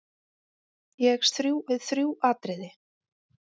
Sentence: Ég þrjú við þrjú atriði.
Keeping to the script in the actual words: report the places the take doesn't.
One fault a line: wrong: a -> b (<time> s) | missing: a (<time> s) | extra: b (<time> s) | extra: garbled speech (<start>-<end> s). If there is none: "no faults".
no faults